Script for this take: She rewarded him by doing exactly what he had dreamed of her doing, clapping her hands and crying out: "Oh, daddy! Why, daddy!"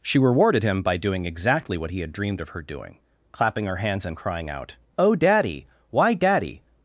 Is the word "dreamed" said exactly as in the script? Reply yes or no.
yes